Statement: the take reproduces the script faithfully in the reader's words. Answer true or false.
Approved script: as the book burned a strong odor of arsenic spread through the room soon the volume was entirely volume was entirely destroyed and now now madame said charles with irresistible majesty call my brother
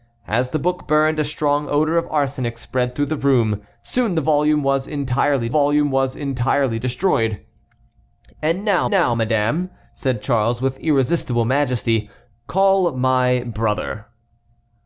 true